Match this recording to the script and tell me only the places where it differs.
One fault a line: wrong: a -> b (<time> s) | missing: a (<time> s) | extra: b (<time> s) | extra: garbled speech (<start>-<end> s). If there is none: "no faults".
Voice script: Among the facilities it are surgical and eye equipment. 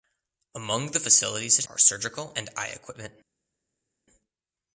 no faults